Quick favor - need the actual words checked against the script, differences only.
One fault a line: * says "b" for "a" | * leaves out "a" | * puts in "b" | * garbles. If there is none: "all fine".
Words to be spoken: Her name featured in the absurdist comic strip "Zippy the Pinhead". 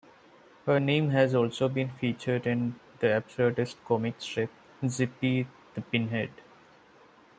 * puts in "has also been"